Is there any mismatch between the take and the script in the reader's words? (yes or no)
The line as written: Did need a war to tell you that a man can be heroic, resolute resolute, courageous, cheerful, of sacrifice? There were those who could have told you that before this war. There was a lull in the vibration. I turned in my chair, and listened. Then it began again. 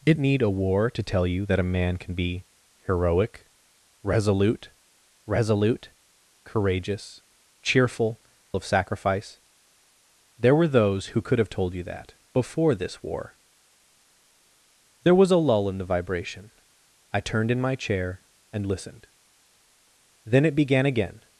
no